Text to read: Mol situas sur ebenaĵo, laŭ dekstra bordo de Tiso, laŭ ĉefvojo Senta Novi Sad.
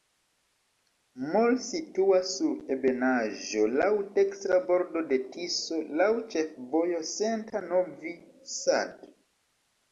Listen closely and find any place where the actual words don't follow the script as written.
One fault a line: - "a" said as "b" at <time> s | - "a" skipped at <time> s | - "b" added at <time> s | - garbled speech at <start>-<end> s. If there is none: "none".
none